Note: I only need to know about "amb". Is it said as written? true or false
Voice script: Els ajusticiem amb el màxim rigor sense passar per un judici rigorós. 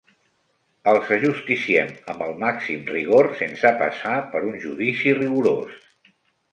true